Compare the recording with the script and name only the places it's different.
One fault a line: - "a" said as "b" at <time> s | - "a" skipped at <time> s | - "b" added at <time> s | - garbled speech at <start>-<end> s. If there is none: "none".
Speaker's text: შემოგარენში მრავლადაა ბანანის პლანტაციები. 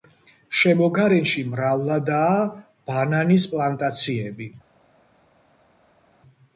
none